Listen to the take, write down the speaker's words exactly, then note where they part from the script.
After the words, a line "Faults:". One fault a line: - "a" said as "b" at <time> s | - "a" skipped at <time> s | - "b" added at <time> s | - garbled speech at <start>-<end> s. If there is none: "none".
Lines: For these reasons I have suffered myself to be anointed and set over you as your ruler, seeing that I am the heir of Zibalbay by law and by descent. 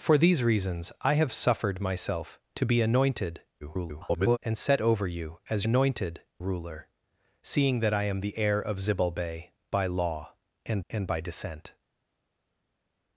For these reasons I have suffered myself to be anointed [garbled] and set over you as anointed ruler, seeing that I am the heir of Zibalbay by law and and by descent.
Faults:
- garbled speech at 3.6-4.4 s
- "your" said as "anointed" at 5.6 s
- "and" added at 10.9 s